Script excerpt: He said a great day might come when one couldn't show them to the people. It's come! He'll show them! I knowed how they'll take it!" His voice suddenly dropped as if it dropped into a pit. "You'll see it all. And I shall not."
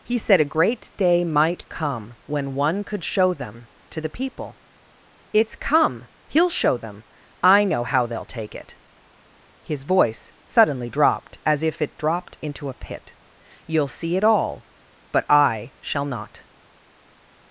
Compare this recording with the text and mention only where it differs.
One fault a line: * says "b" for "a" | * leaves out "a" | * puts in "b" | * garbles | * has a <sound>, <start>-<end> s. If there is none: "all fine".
* says "could" for "couldn't"
* says "know" for "knowed"
* says "But" for "And"